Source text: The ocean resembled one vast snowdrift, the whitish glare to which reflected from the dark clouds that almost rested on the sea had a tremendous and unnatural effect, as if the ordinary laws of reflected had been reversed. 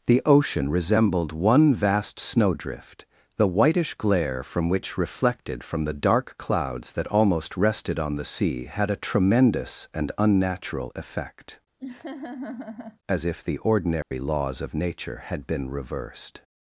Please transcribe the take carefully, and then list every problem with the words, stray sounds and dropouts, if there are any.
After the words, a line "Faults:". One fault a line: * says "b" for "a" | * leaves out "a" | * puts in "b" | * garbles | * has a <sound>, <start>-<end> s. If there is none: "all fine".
The ocean resembled one vast snowdrift, the whitish glare from which reflected from the dark clouds that almost rested on the sea had a tremendous and unnatural effect, as if the ordinary laws of nature had been reversed.
Faults:
* says "from" for "to"
* has a laugh, 11.8-13.0 s
* has a dropout, 14.0-14.1 s
* says "nature" for "reflected"